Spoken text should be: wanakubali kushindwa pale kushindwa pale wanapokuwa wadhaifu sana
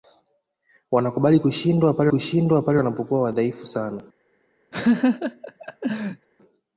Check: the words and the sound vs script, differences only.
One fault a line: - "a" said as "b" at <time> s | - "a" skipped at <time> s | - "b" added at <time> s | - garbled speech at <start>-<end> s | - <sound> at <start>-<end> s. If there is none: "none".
- laugh at 4.7-6.3 s